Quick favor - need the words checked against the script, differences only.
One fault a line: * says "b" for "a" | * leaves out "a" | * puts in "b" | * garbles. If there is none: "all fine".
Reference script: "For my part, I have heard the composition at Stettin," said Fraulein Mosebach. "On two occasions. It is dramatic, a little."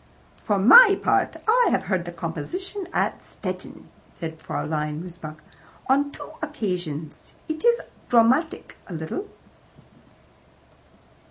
all fine